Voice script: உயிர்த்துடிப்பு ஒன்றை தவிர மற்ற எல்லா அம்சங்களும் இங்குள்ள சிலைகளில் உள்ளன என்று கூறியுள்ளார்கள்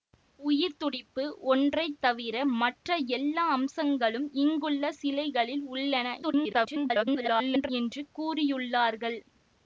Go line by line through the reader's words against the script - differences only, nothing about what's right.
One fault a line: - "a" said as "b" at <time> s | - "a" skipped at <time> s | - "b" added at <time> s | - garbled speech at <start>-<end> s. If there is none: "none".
- garbled speech at 6.2-7.7 s